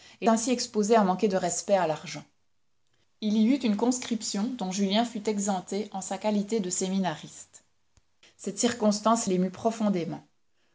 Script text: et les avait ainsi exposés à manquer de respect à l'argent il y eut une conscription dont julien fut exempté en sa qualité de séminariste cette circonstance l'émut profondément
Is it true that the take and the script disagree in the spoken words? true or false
true